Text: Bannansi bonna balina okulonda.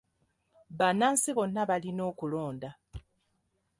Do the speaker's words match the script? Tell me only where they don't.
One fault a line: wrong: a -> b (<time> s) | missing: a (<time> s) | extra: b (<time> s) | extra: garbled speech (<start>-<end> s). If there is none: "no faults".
no faults